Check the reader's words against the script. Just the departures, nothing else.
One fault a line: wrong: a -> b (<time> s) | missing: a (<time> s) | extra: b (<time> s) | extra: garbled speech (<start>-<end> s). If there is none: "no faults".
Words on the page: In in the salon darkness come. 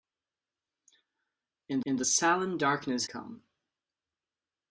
no faults